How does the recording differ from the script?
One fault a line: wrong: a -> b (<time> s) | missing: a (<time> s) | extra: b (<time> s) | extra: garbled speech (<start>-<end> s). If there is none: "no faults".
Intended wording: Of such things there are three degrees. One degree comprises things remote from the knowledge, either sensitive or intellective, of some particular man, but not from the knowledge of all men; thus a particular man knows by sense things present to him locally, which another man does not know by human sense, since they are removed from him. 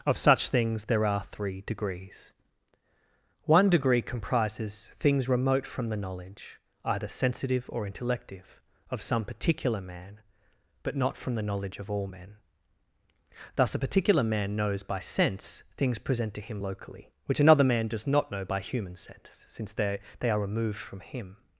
extra: they (20.2 s)